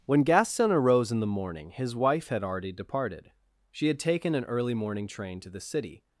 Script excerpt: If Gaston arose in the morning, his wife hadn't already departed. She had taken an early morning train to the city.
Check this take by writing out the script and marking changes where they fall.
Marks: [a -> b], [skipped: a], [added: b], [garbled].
[If -> When] Gaston arose in the morning, his wife [hadn't -> had] already departed. She had taken an early morning train to the city.